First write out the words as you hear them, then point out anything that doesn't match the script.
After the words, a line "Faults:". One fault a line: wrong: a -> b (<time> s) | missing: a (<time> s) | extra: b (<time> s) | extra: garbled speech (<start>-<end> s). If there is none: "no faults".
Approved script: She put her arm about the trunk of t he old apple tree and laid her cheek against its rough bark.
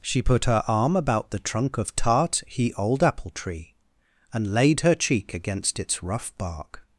She put her arm about the trunk of tart he old apple tree and laid her cheek against its rough bark.
Faults:
wrong: t -> tart (1.9 s)